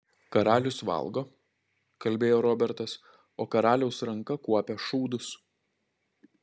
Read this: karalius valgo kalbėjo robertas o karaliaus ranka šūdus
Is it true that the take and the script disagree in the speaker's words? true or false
true